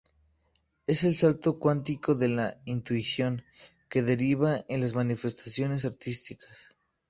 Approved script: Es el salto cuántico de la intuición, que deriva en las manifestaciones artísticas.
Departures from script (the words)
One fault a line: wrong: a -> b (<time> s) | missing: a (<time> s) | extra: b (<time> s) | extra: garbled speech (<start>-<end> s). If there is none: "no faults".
no faults